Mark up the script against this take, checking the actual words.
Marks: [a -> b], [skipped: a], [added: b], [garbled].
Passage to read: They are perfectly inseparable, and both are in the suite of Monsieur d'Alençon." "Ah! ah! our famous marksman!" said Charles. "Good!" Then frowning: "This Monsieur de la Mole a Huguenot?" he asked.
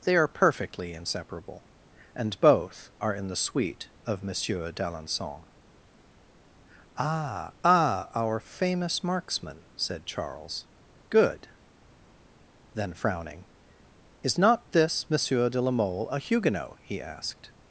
They are perfectly inseparable, and both are in the suite of Monsieur d'Alençon." "Ah! ah! our famous marksman!" said Charles. "Good!" Then frowning: [added: Is not] "This Monsieur de la Mole a Huguenot?" he asked.